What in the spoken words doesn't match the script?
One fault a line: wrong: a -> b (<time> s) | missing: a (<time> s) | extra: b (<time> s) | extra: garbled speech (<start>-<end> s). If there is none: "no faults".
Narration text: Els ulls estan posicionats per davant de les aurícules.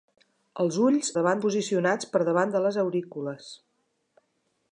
wrong: estan -> davant (1.2 s)